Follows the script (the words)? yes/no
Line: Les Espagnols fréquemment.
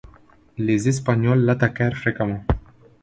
no